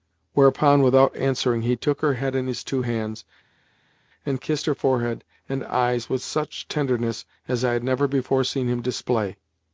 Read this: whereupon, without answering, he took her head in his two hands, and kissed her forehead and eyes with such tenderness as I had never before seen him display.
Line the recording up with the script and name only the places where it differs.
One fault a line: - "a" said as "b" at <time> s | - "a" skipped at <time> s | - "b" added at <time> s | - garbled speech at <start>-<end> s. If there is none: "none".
none